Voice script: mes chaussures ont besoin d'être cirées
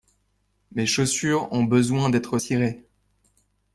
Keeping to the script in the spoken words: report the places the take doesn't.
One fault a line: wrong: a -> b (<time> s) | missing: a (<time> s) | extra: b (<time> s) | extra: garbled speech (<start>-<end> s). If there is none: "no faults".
no faults